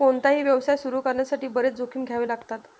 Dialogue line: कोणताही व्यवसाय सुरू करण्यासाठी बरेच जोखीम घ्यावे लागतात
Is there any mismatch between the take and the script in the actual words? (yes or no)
no